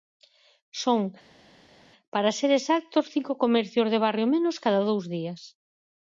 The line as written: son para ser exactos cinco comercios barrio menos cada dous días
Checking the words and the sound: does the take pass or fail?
fail